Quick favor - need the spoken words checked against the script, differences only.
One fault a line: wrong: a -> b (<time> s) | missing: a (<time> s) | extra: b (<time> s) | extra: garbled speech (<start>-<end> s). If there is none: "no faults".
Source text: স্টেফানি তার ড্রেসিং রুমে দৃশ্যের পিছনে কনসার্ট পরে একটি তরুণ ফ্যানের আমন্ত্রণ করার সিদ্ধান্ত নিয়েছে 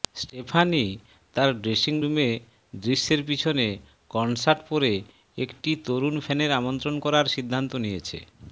no faults